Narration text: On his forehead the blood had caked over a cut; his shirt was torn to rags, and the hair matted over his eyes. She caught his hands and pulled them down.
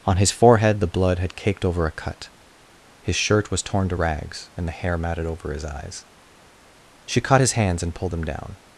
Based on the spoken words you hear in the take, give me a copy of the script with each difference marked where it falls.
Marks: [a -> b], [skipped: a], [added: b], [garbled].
On his forehead the blood had caked over a cut; his shirt was torn to rags, and the hair matted over his eyes. She caught his hands and pulled them down.